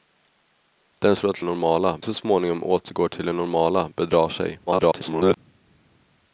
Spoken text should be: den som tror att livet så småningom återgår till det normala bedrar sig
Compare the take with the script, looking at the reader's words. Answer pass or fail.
fail